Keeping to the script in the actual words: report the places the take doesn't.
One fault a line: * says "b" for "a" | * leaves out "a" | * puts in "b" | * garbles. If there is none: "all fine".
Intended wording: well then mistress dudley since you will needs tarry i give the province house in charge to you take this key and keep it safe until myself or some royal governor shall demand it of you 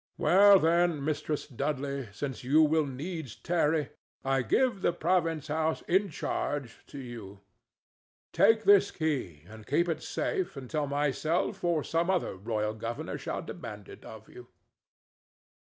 * puts in "other"